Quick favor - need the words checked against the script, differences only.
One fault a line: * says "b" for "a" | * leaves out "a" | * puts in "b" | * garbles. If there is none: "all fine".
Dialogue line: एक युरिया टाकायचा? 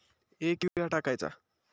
all fine